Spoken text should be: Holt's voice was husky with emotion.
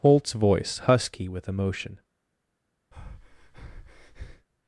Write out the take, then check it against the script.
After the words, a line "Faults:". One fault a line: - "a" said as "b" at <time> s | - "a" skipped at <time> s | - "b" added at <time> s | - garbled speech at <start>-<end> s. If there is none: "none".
Holt's voice husky with emotion.
Faults:
- "was" skipped at 0.8 s